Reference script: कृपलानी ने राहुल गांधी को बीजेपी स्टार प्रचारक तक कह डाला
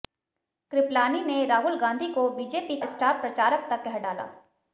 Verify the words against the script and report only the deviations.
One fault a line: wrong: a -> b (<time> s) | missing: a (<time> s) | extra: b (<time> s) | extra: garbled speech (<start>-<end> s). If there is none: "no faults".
no faults